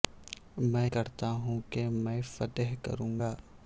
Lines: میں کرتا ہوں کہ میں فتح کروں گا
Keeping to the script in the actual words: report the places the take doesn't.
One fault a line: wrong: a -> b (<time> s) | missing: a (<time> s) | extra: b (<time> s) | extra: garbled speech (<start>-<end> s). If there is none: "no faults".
no faults